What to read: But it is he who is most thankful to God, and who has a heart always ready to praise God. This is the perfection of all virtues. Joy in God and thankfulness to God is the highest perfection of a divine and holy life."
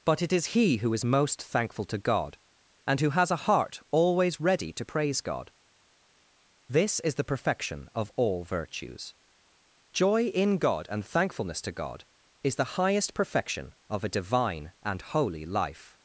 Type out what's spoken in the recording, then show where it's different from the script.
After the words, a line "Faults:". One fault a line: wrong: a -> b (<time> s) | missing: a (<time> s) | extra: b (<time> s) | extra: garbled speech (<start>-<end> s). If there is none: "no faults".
But it is he who is most thankful to God, and who has a heart always ready to praise God. This is the perfection of all virtues. Joy in God and thankfulness to God is the highest perfection of a divine and holy life."
Faults:
no faults